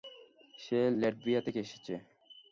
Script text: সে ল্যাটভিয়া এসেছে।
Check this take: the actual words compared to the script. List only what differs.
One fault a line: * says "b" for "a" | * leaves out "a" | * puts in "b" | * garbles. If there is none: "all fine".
* puts in "থেকে"